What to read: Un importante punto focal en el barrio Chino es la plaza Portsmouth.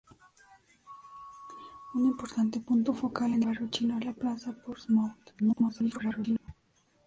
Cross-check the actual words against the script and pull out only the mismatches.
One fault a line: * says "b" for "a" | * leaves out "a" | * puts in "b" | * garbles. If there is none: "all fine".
* leaves out "el"
* garbles